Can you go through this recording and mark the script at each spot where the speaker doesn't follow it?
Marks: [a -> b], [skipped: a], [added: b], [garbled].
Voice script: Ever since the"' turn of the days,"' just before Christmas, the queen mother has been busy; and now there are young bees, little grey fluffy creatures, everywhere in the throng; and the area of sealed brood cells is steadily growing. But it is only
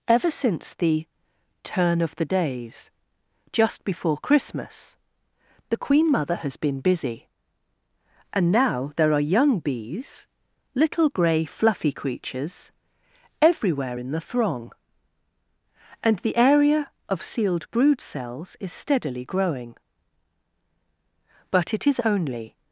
Ever since the"' turn of the days,"' just before Christmas, the queen mother has been busy; and now there are young bees, little grey fluffy creatures, everywhere in the throng; and the area of sealed brood cells is steadily growing. But it is only